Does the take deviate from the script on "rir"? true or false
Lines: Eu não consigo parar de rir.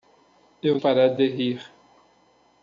false